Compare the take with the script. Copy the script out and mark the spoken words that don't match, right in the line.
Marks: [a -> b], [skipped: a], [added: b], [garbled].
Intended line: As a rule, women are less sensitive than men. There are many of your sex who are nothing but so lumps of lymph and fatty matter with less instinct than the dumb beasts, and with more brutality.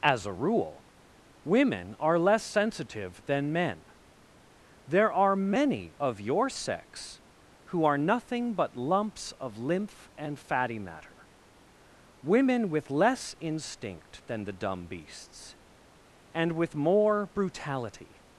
As a rule, women are less sensitive than men. There are many of your sex who are nothing but [skipped: so] lumps of lymph and fatty matter [added: women] with less instinct than the dumb beasts, and with more brutality.